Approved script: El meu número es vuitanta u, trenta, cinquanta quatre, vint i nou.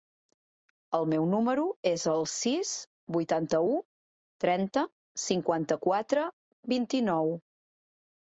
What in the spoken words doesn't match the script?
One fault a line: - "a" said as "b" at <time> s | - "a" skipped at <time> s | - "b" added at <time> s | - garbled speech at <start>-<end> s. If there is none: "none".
- "el sis" added at 2.1 s